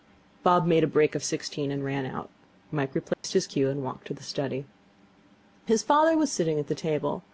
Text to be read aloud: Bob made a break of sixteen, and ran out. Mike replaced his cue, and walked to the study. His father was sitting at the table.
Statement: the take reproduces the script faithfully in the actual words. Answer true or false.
true